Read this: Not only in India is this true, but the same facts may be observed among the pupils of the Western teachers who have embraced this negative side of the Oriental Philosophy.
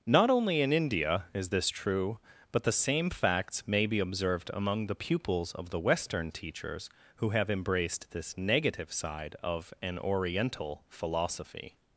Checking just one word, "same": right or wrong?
right